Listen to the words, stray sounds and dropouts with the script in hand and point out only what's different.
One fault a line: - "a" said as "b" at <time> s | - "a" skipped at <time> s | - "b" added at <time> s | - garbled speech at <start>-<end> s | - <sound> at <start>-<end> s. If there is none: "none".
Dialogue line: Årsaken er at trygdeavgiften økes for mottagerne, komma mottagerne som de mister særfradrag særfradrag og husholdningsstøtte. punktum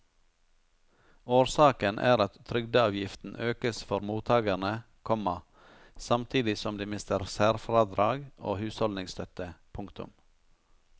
- "mottagerne" said as "samtidig" at 6.1 s
- "særfradrag" skipped at 8.2 s